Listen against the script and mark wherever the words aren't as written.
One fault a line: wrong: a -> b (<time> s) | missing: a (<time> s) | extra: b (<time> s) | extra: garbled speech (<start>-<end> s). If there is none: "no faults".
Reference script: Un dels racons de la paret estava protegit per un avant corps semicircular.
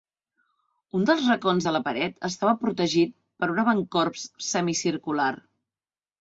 no faults